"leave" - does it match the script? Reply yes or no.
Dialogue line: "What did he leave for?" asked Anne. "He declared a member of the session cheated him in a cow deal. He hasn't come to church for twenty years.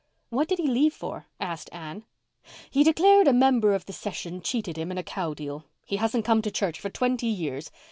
yes